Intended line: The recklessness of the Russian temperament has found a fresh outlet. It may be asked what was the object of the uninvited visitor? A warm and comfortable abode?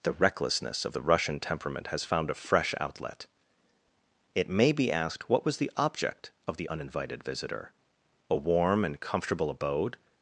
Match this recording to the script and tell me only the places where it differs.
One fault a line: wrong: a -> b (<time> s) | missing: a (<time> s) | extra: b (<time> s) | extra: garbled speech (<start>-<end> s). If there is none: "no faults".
no faults